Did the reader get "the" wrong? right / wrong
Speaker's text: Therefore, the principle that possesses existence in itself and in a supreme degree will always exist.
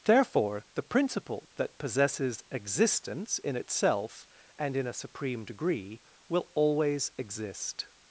right